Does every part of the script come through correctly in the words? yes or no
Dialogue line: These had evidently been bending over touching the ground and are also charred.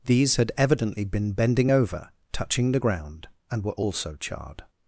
no